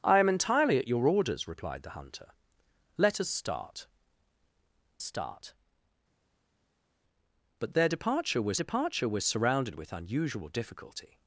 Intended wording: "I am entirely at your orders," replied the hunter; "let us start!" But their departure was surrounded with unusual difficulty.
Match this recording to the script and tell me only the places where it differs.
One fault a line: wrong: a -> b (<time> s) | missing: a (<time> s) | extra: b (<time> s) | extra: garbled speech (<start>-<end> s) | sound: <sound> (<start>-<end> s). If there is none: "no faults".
extra: start (5.0 s)
extra: departure was (8.6 s)